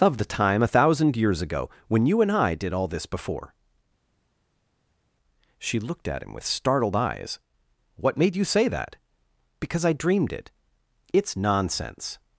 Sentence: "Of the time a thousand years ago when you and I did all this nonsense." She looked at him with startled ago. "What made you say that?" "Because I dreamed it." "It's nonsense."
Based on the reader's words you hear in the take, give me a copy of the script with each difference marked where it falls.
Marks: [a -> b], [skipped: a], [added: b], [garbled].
"Of the time a thousand years ago when you and I did all this [nonsense." -> before] She looked at him with startled [ago. -> eyes] "What made you say that?" "Because I dreamed it." "It's nonsense."